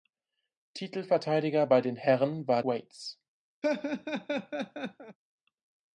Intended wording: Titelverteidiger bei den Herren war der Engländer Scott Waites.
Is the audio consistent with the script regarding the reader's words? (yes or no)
no